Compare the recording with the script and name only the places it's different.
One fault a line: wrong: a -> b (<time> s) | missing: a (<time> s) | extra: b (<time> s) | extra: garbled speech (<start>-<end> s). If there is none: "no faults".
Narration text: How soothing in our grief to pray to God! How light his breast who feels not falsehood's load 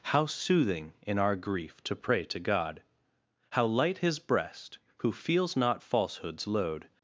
no faults